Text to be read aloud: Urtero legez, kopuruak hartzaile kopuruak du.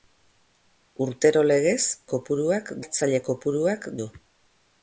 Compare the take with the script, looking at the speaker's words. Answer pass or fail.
pass